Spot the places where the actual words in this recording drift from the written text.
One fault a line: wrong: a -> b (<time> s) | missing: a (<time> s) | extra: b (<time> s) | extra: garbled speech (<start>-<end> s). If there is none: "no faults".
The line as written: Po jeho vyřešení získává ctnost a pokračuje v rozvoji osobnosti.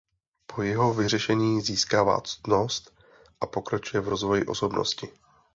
no faults